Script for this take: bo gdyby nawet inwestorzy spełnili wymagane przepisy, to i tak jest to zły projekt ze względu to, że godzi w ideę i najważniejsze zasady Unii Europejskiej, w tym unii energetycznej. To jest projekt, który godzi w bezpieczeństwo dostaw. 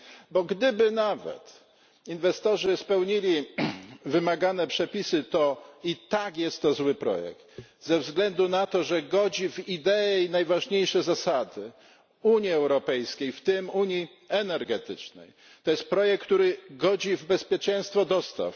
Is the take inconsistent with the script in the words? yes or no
yes